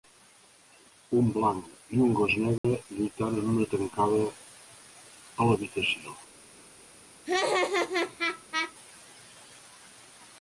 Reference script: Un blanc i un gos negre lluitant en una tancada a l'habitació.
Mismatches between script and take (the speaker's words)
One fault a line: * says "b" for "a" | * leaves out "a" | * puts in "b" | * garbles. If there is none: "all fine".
all fine